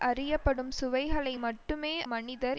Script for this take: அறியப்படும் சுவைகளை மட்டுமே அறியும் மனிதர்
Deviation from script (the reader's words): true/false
true